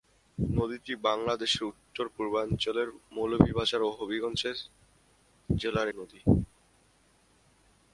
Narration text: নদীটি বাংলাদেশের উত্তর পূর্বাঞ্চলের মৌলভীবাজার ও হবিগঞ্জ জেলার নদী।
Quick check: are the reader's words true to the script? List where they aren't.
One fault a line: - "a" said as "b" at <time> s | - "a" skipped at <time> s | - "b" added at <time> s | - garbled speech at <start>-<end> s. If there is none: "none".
none